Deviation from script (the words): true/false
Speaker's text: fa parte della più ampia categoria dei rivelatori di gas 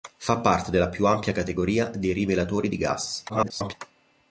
true